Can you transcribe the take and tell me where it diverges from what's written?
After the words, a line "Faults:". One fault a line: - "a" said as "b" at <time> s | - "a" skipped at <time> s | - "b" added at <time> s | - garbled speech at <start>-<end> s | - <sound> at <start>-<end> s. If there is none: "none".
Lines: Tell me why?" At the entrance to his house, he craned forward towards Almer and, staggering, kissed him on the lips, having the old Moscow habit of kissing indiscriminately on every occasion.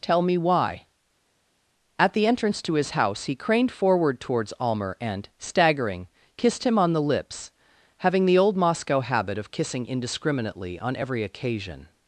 Tell me why?" At the entrance to his house, he craned forward towards Almer and, staggering, kissed him on the lips, having the old Moscow habit of kissing indiscriminately on every occasion.
Faults:
none